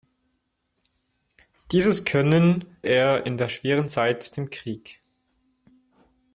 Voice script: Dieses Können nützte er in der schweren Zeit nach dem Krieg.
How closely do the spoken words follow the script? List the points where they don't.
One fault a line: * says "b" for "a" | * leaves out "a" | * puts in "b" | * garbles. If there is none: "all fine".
* leaves out "nützte"
* leaves out "nach"